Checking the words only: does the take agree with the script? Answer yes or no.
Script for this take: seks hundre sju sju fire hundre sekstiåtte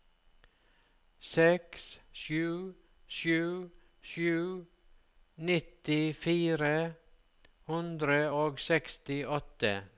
no